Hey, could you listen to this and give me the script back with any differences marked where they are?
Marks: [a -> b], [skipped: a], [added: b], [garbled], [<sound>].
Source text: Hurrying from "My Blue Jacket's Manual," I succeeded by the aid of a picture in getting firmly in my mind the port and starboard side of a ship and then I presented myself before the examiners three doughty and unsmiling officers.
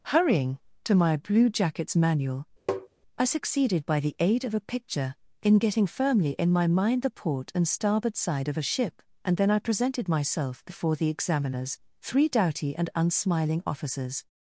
Hurrying [from -> to] "My Blue Jacket's Manual," [tap] I succeeded by the aid of a picture in getting firmly in my mind the port and starboard side of a ship and then I presented myself before the examiners three doughty and unsmiling officers.